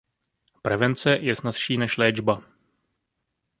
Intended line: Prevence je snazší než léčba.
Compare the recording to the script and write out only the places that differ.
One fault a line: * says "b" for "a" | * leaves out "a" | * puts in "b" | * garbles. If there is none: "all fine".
all fine